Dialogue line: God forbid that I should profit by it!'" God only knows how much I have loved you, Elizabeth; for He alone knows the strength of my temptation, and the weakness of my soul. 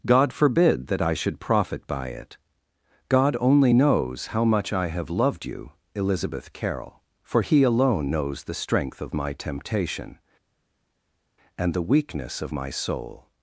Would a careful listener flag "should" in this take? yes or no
no